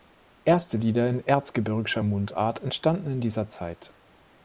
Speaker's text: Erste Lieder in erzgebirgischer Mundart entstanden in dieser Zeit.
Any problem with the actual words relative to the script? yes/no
no